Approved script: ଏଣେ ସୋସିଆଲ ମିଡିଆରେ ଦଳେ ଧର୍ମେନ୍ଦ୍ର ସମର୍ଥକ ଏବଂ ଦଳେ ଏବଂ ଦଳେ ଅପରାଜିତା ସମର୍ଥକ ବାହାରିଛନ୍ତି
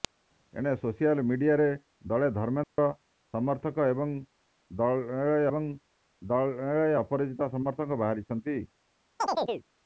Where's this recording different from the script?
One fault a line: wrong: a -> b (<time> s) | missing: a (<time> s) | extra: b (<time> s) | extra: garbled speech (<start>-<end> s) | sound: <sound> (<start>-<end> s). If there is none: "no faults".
sound: dropout (2.6-2.8 s)
sound: chirp (9.2-9.7 s)